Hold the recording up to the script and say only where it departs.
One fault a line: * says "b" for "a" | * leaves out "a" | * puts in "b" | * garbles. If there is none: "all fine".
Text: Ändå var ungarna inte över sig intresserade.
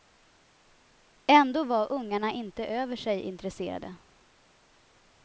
all fine